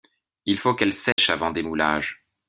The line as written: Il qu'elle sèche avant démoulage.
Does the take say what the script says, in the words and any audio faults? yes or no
no